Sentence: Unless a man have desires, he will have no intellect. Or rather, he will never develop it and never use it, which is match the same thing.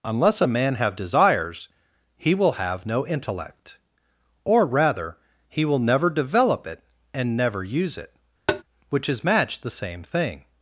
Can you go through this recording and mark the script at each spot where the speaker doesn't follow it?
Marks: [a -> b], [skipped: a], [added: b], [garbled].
Unless a man have desires, he will have no intellect. Or rather, he will never develop it and never use it, which is match the same thing.